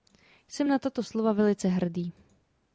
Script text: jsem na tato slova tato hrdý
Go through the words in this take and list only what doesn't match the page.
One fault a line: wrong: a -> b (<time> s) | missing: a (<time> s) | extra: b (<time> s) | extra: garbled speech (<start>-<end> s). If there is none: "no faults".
wrong: tato -> velice (1.3 s)